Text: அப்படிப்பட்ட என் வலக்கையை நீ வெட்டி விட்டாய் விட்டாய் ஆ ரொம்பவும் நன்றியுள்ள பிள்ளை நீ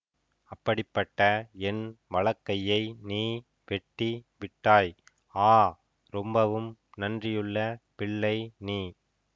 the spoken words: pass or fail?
fail